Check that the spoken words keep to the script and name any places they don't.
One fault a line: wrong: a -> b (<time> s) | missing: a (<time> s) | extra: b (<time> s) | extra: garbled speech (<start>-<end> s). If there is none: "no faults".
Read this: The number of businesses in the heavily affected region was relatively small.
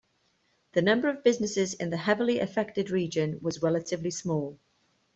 no faults